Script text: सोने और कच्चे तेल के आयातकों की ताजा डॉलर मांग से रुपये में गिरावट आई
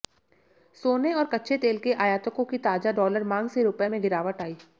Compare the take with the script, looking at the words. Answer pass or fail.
pass